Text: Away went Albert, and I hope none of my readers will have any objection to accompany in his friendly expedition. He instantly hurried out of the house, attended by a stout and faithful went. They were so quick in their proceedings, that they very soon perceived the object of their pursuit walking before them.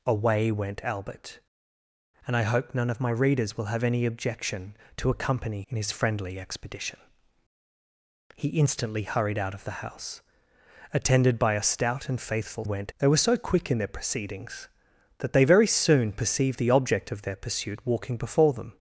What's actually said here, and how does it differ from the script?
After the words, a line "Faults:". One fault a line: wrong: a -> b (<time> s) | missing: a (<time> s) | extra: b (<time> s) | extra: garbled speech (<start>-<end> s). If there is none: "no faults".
Away went Albert, and I hope none of my readers will have any objection to accompany in his friendly expedition. He instantly hurried out of the house, attended by a stout and faithful went. They were so quick in their proceedings, that they very soon perceived the object of their pursuit walking before them.
Faults:
no faults